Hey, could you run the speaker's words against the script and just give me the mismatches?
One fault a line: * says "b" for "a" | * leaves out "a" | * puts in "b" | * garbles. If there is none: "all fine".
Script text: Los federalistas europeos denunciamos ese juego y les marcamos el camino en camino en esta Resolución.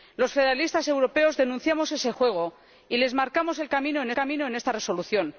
all fine